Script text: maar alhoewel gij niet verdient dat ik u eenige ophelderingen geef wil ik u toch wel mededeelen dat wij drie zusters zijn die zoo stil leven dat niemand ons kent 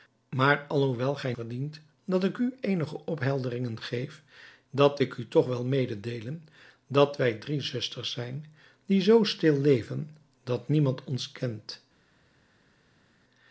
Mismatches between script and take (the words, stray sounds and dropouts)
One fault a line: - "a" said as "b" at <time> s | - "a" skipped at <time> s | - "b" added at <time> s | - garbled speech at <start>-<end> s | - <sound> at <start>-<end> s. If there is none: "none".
- "niet" skipped at 1.3 s
- "wil" said as "dat" at 4.7 s